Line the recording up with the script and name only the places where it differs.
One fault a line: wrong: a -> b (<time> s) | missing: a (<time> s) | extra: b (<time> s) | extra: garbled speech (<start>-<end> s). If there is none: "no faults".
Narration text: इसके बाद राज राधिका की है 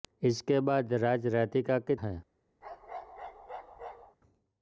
no faults